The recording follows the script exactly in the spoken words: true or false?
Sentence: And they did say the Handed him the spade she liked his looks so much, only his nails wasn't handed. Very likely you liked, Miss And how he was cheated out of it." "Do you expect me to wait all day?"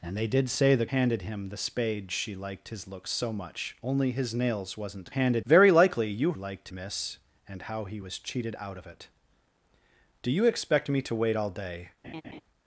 true